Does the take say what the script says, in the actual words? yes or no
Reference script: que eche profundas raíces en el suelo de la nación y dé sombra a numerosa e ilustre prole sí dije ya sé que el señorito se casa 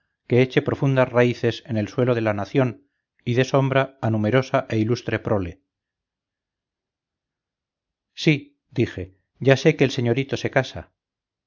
yes